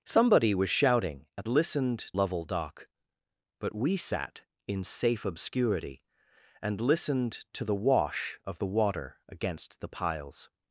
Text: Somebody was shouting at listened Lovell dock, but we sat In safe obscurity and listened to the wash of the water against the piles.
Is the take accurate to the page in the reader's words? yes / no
yes